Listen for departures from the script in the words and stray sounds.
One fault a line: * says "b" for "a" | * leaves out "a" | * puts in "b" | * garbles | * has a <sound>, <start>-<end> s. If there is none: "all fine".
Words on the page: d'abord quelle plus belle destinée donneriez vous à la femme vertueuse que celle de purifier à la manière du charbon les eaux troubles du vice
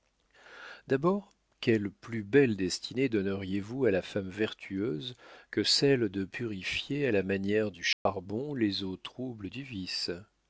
* has a dropout, 7.9-8.1 s